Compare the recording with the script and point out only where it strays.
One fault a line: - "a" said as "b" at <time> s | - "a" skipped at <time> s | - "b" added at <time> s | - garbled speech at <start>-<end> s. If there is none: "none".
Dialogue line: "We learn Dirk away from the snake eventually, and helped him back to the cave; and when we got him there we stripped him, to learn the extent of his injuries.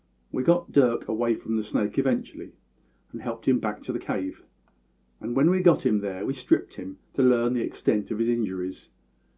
- "learn" said as "got" at 0.4 s